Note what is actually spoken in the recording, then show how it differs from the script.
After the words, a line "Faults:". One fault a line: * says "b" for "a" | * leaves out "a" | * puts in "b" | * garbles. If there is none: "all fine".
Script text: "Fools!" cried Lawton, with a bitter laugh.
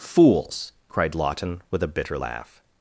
"Fools!" cried Lawton, with a bitter laugh.
Faults:
all fine